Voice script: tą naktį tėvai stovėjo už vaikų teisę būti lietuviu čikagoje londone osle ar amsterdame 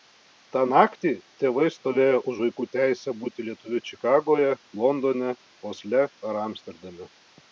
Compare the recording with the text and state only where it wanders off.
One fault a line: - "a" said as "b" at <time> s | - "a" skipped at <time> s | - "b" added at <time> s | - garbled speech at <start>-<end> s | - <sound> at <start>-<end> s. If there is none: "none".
none